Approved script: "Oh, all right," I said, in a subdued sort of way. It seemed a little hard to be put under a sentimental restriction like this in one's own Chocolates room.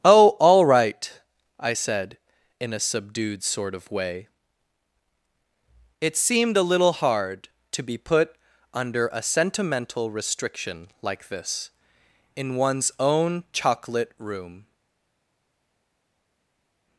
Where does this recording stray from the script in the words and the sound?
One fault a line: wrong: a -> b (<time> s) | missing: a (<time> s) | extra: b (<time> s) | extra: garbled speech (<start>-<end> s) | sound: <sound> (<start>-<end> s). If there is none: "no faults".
wrong: Chocolates -> Chocolate (13.5 s)